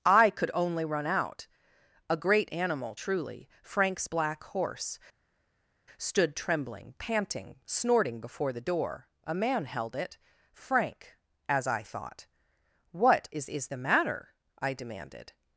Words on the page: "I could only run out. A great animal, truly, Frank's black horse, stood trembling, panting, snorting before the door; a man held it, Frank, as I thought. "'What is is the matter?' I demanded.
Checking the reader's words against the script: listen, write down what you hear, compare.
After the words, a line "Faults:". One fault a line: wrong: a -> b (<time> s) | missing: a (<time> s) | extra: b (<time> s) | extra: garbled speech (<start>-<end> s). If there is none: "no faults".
"I could only run out. A great animal, truly, Frank's black horse, stood trembling, panting, snorting before the door; a man held it, Frank, as I thought. "'What is is the matter?' I demanded.
Faults:
no faults